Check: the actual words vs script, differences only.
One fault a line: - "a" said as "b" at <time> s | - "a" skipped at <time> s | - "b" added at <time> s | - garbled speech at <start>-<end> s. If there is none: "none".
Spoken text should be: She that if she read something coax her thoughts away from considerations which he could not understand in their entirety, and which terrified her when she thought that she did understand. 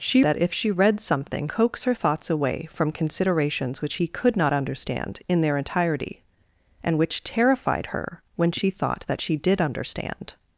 none